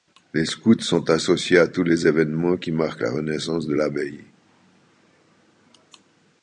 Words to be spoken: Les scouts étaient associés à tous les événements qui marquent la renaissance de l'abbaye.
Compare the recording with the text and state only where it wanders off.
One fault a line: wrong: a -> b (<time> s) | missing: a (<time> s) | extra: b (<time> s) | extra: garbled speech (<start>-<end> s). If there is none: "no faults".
wrong: étaient -> sont (0.8 s)